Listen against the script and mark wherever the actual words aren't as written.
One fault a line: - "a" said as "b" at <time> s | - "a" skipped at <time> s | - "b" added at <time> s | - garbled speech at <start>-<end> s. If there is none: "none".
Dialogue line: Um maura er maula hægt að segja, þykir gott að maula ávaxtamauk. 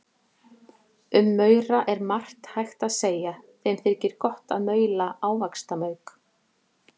- "maula" said as "margt" at 2.1 s
- "þeim" added at 3.7 s